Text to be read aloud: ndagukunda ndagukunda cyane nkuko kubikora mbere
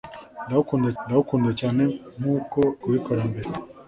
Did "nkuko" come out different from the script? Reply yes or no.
no